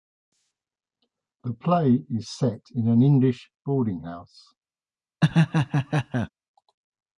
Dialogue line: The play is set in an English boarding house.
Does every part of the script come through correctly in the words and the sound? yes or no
no